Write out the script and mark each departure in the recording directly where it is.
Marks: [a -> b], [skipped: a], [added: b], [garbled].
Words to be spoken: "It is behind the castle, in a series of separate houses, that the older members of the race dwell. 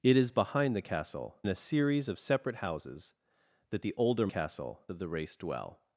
"It is behind the castle, [skipped: in] a series of separate houses, that the older [members -> castle] of the race dwell.